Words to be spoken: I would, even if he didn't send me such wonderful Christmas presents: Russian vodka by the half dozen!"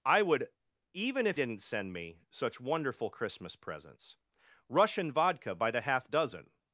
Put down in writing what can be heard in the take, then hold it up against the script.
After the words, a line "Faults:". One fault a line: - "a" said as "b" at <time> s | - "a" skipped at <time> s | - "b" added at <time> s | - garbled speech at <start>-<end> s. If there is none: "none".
I would, even if didn't send me such wonderful Christmas presents: Russian vodka by the half dozen!"
Faults:
- "he" skipped at 1.4 s